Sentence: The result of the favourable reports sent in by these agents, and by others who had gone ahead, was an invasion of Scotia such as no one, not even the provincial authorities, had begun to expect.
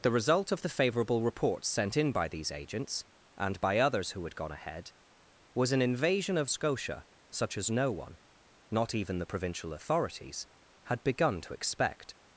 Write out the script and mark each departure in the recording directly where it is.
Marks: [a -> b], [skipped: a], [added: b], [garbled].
The result of the favourable reports sent in by these agents, and by others who had gone ahead, was an invasion of Scotia such as no one, not even the provincial authorities, had begun to expect.